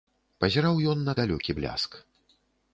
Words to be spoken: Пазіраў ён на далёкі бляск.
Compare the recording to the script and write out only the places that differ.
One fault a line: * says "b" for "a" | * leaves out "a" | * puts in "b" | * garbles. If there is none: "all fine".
all fine